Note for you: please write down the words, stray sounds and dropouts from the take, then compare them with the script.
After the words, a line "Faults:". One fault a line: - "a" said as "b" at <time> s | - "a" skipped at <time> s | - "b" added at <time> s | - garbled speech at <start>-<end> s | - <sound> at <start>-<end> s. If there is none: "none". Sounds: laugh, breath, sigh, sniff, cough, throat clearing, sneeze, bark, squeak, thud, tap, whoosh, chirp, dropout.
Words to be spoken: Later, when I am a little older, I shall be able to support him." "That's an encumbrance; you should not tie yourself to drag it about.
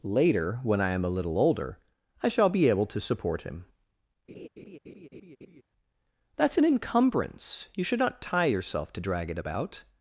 Later, when I am a little older, I shall be able to support him." "That's an encumbrance; you should not tie yourself to drag it about.
Faults:
- laugh at 4.3-5.6 s